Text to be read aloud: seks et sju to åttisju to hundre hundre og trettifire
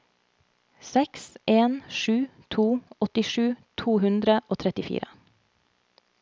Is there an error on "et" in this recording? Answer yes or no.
yes